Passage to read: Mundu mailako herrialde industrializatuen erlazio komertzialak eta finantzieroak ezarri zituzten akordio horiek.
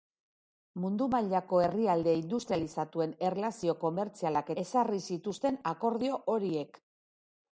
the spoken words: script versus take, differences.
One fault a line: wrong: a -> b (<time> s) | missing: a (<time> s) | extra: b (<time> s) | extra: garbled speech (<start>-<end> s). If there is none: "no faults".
missing: eta finantzieroak (4.5 s)